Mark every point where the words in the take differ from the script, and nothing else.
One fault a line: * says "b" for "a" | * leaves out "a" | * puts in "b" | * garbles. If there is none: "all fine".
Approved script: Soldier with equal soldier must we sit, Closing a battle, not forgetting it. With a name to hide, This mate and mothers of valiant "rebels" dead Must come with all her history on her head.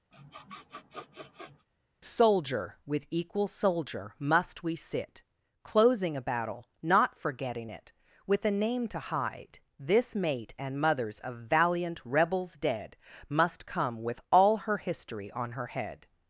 all fine